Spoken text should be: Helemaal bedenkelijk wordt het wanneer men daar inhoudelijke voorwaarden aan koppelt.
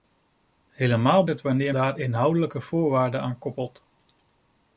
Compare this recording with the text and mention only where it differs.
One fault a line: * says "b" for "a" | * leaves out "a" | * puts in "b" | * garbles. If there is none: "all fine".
* leaves out "bedenkelijk wordt"
* leaves out "men"